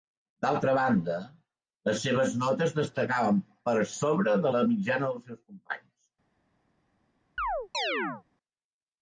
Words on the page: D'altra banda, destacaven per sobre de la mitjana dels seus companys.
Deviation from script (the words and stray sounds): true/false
true